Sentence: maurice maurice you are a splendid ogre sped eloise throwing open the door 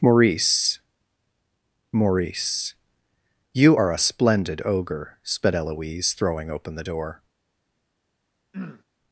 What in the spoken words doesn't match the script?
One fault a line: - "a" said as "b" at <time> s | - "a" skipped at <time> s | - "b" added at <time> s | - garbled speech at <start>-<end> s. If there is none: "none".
none